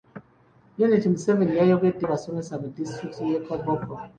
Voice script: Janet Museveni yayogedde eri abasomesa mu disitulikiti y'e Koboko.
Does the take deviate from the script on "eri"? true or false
true